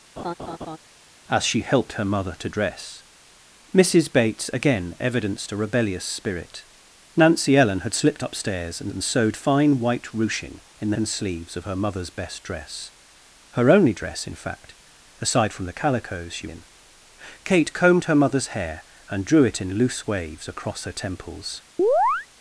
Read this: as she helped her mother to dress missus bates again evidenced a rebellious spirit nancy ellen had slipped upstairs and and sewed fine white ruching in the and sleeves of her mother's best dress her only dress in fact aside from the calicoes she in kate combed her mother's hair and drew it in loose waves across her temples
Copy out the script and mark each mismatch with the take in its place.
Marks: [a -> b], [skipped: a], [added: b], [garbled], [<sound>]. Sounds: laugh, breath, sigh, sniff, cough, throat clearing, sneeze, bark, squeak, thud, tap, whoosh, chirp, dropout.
[laugh] as she helped her mother to dress missus bates again evidenced a rebellious spirit nancy ellen had slipped upstairs and and sewed fine white ruching in the and sleeves of her mother's best dress her only dress in fact aside from the calicoes she in kate combed her mother's hair and drew it in loose waves across her temples [chirp]